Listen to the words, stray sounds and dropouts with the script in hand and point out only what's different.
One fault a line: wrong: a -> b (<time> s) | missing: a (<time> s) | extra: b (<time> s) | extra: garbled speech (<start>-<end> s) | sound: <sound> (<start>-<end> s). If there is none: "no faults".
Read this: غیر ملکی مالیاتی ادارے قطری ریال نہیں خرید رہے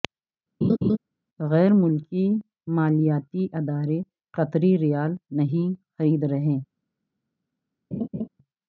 sound: laugh (0.6-1.0 s)
sound: laugh (7.9-8.3 s)